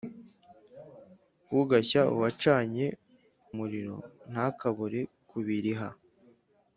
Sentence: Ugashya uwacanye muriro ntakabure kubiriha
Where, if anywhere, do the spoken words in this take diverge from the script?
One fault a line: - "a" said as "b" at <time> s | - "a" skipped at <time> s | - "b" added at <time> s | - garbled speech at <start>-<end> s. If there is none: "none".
none